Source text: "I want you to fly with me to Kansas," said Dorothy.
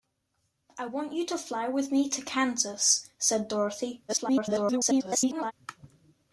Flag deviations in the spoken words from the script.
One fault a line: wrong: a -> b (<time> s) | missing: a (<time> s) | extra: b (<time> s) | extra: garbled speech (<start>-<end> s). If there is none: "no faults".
extra: garbled speech (4.1-5.5 s)